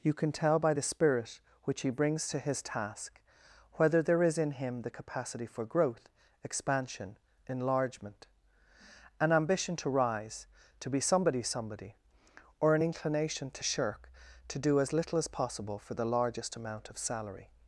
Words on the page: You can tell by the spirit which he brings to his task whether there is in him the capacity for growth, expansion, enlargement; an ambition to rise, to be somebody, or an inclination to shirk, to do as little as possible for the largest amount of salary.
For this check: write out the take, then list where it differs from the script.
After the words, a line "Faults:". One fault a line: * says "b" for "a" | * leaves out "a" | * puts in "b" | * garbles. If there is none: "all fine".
You can tell by the spirit which he brings to his task whether there is in him the capacity for growth, expansion, enlargement; an ambition to rise, to be somebody somebody, or an inclination to shirk, to do as little as possible for the largest amount of salary.
Faults:
* puts in "somebody"